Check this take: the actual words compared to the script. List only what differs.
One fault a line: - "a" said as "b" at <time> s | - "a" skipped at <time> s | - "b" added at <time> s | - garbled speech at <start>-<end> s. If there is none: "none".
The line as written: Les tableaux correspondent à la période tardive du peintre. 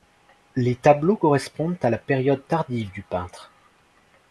none